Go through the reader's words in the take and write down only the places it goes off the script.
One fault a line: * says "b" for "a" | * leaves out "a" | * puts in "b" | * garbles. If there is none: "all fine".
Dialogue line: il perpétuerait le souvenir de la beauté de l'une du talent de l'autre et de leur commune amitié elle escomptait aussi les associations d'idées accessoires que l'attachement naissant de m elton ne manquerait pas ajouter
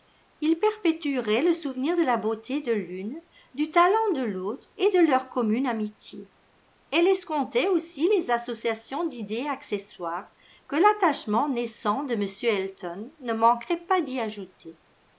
* puts in "d'y"